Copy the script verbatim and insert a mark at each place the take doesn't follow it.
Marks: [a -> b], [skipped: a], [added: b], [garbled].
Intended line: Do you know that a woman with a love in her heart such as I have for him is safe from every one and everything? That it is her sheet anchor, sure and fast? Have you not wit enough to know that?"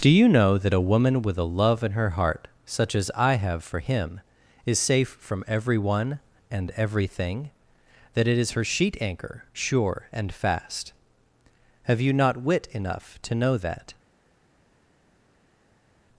Do you know that a woman with a love in her heart such as I have for him is safe from every one and everything? That it is her sheet anchor, sure and fast? Have you not wit enough to know that?"